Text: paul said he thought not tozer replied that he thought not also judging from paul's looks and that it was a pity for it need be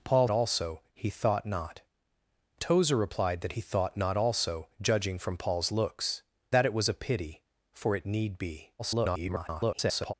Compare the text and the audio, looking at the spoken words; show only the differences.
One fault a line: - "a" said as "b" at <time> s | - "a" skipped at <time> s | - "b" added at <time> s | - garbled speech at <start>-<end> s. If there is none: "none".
- "said" said as "also" at 0.3 s
- "and" skipped at 6.2 s
- garbled speech at 8.8-10.1 s